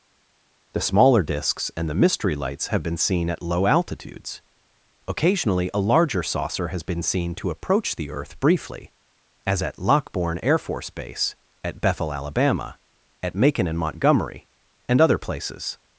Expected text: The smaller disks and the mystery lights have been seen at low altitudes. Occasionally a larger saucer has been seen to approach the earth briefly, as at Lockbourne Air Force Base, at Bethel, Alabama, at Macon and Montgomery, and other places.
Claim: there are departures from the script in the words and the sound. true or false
false